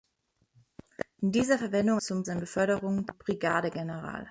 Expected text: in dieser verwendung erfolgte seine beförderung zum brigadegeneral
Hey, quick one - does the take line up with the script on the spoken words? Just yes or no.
no